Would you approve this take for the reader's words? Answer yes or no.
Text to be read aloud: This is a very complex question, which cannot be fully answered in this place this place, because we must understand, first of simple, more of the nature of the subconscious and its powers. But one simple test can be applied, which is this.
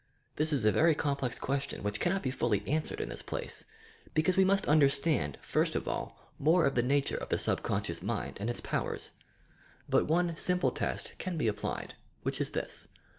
no